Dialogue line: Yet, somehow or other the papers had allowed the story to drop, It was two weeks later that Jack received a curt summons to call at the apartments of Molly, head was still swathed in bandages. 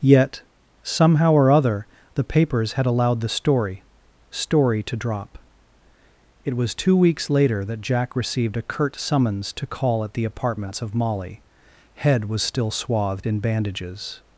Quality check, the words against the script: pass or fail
fail